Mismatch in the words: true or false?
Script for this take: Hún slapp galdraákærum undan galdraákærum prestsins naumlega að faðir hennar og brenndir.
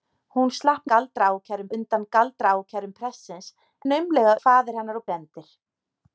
false